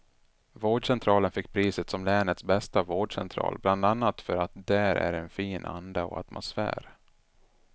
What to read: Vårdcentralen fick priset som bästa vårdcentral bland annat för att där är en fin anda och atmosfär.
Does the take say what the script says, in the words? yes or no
no